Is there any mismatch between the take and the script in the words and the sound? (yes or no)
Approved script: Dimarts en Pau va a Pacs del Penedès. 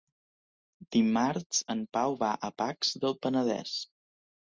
no